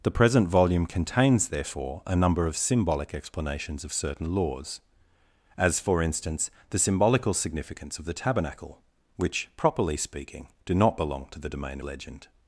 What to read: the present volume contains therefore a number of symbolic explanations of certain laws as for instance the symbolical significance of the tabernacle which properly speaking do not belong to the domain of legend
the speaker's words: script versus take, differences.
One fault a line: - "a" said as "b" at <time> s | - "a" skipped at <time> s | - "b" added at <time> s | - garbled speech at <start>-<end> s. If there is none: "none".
- "of" skipped at 11.8 s